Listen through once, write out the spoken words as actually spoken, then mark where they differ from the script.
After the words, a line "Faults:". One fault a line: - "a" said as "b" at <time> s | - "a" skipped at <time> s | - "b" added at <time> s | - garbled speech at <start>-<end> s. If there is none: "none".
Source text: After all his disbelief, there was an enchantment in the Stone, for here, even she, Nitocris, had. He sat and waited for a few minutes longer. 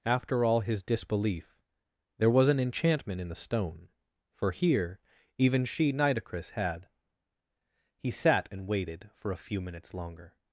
After all his disbelief, there was an enchantment in the Stone, for here, even she, Nitocris, had. He sat and waited for a few minutes longer.
Faults:
none